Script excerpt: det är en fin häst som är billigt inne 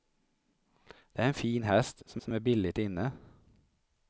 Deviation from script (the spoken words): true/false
true